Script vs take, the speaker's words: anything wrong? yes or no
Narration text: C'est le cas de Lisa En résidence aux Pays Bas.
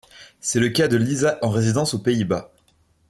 no